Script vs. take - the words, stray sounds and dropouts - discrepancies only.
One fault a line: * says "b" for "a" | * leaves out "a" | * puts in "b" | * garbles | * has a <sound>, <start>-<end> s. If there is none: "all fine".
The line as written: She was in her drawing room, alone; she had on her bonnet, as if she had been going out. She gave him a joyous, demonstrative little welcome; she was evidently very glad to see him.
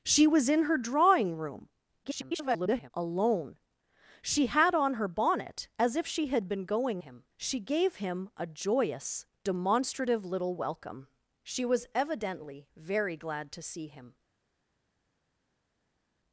* garbles
* says "him" for "out"